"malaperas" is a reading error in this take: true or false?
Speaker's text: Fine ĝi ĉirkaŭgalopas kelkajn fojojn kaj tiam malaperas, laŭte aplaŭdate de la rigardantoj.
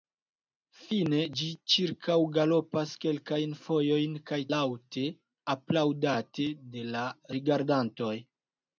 true